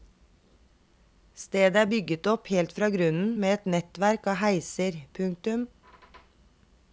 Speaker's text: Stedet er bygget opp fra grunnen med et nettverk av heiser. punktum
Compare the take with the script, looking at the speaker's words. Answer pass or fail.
fail